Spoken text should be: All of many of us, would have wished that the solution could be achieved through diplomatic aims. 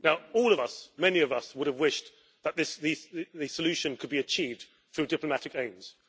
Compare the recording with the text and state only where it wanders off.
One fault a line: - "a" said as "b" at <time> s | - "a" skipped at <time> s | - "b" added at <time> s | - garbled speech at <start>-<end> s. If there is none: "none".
- "us" added at 0.6 s